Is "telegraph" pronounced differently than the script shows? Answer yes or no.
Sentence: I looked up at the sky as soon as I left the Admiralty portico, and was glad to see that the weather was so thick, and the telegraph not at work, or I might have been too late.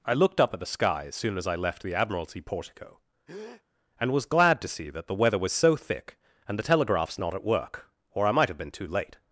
yes